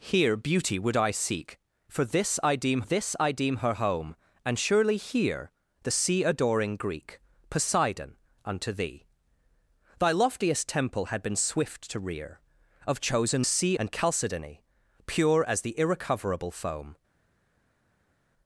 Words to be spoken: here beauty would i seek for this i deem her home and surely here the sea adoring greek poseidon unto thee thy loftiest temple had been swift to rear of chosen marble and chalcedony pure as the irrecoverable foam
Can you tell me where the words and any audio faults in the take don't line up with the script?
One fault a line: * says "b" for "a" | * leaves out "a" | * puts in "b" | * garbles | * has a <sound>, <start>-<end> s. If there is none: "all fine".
* puts in "this i deem"
* says "sea" for "marble"